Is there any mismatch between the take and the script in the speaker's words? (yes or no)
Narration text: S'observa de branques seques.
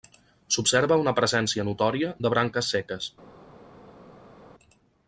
yes